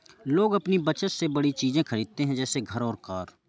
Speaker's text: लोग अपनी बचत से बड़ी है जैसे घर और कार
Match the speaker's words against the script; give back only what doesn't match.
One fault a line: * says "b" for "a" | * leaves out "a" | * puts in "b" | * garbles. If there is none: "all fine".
* puts in "चीज़े खरीदते"